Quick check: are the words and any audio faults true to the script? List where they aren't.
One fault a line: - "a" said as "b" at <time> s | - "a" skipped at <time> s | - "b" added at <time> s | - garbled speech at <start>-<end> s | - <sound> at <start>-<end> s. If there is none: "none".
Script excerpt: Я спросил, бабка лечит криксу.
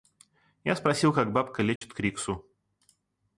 - "как" added at 1.1 s
- dropout at 1.8-1.8 s